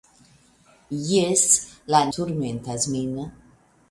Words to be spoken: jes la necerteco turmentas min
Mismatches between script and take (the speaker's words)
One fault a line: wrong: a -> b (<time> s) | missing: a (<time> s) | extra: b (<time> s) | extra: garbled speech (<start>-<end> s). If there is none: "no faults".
missing: necerteco (2.0 s)